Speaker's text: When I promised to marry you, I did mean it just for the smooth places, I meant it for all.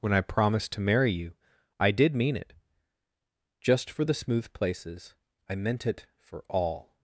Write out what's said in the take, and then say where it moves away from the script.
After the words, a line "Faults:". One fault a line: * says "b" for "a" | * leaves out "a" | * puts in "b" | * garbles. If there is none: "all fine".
When I promised to marry you, I did mean it just for the smooth places, I meant it for all.
Faults:
all fine